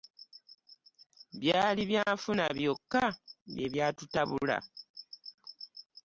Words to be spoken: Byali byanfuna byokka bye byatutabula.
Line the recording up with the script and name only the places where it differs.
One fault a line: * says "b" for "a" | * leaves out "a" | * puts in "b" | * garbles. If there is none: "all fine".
all fine